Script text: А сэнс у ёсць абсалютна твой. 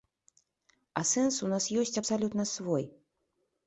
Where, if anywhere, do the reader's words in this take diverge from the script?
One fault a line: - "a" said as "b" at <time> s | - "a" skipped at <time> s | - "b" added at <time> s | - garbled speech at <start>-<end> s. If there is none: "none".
- "нас" added at 1.5 s
- "твой" said as "свой" at 2.6 s